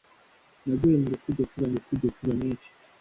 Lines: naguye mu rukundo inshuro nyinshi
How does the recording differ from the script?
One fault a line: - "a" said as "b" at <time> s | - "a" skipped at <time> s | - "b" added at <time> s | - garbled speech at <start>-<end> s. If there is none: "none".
- "rukundo inshuro" added at 1.8 s